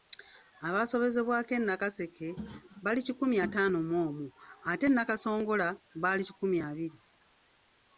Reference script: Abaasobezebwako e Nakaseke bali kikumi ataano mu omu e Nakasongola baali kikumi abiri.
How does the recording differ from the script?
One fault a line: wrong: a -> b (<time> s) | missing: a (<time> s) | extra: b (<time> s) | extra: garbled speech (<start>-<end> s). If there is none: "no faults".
extra: ate (4.7 s)